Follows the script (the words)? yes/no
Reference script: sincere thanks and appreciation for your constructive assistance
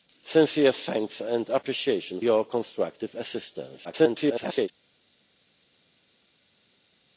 no